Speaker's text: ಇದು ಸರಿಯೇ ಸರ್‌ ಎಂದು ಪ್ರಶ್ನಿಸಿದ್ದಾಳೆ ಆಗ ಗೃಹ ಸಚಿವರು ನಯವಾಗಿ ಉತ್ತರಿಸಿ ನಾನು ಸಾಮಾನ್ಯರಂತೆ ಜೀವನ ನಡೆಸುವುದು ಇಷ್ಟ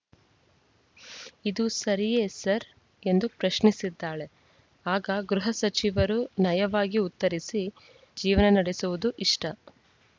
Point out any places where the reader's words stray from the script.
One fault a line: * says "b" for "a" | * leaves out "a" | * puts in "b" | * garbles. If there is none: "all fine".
* leaves out "ನಾನು ಸಾಮಾನ್ಯರಂತೆ"